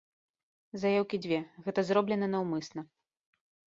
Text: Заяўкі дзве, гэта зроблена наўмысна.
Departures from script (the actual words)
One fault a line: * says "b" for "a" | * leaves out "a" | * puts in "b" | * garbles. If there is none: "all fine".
all fine